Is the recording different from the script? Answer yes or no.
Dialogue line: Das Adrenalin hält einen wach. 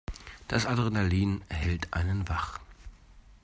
no